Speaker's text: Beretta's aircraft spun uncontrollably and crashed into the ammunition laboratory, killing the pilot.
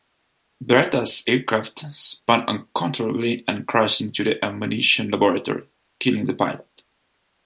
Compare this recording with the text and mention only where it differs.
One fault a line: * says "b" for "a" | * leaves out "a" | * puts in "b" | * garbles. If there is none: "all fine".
all fine